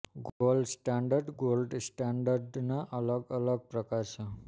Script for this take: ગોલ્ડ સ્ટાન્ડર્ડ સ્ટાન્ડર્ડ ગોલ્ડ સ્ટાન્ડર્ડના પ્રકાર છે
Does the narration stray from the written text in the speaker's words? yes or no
yes